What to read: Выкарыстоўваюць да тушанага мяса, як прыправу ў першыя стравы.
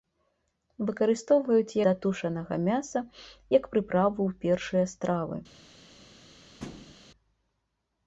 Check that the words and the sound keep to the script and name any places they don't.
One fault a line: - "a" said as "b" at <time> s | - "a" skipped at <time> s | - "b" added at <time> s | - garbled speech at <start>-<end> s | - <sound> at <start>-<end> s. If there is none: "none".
- thud at 6.6-6.9 s